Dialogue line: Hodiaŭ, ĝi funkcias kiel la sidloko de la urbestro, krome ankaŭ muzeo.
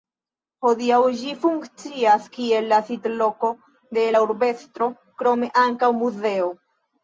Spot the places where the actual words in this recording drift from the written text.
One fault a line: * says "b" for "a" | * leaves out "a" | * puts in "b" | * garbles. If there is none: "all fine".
all fine